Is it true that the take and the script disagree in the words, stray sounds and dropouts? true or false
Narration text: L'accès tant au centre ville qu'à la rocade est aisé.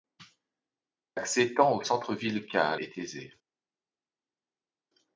true